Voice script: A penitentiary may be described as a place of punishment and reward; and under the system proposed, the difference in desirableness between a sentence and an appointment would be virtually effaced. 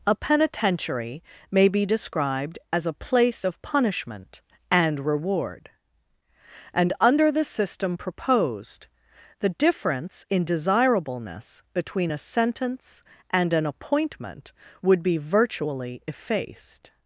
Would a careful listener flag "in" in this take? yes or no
no